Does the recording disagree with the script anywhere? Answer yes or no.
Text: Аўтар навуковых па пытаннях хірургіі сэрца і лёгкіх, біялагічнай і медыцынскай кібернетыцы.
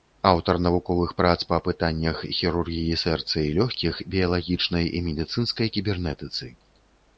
yes